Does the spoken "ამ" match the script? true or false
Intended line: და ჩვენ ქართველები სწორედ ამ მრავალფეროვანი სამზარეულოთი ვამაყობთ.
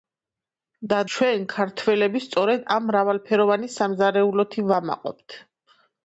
true